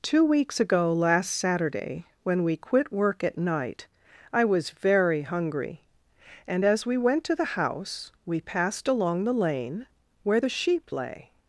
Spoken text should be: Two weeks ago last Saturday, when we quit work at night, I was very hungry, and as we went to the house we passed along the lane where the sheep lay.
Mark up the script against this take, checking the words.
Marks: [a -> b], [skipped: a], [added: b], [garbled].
Two weeks ago last Saturday, when we quit work at night, I was very hungry, and as we went to the house we passed along the lane where the sheep lay.